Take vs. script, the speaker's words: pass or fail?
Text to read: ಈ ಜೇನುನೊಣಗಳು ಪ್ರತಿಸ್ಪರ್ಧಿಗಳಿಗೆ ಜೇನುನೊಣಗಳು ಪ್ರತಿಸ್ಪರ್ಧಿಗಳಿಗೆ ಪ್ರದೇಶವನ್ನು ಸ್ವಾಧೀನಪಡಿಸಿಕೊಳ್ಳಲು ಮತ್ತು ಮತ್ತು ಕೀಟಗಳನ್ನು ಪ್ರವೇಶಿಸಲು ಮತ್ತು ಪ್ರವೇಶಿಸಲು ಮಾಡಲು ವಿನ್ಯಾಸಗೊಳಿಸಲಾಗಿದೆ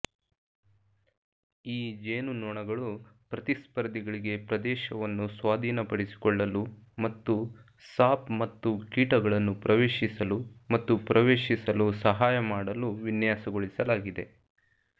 fail